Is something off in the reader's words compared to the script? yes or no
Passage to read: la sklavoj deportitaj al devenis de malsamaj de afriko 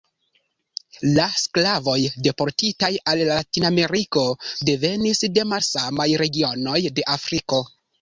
yes